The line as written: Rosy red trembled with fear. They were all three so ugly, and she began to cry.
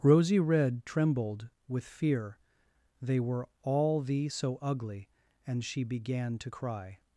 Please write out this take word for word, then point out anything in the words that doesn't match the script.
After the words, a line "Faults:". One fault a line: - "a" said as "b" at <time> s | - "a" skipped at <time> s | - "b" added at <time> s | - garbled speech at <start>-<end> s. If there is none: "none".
Rosy red trembled with fear. They were all thee so ugly, and she began to cry.
Faults:
- "three" said as "thee" at 4.0 s